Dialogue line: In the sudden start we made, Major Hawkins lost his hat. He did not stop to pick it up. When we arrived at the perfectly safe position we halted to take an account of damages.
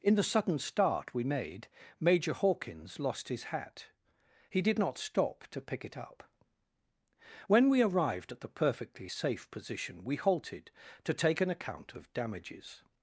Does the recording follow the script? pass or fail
pass